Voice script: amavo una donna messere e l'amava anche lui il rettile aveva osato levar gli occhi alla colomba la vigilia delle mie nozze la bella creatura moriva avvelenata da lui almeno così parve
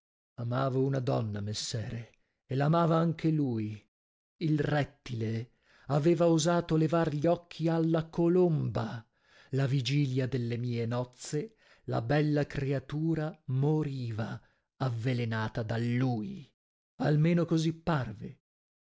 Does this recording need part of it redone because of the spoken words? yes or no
no